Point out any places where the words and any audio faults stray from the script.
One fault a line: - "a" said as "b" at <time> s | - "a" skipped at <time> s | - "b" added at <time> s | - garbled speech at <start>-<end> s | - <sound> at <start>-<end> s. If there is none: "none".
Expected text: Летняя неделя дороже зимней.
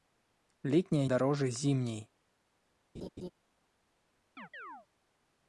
- "неделя" skipped at 1.1 s
- laugh at 2.9-3.3 s
- chirp at 4.4-4.9 s